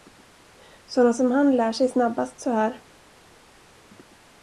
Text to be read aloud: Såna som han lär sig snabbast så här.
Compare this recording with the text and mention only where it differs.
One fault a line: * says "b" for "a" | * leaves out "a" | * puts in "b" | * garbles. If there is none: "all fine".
all fine